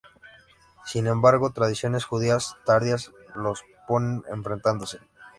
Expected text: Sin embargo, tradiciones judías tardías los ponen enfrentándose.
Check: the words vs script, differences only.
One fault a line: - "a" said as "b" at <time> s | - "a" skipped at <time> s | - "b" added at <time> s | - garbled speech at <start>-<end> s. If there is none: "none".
none